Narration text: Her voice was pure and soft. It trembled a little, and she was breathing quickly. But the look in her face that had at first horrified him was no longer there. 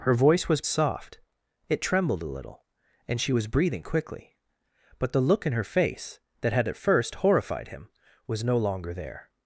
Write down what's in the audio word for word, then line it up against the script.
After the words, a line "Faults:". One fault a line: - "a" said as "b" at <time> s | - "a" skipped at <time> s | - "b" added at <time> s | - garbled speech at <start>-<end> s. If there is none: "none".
Her voice was soft. It trembled a little, and she was breathing quickly. But the look in her face that had at first horrified him was no longer there.
Faults:
- "pure and" skipped at 0.6 s